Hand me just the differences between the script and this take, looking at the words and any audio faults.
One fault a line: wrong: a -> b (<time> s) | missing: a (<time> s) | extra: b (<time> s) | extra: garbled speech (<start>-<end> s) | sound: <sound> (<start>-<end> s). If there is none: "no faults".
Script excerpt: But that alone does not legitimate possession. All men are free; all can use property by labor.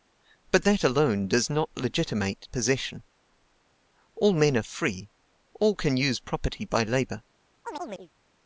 sound: chirp (7.6-8.1 s)